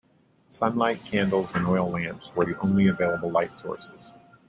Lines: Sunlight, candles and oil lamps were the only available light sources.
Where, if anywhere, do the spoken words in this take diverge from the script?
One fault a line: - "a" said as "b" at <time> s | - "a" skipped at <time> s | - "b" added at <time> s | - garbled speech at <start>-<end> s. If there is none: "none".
none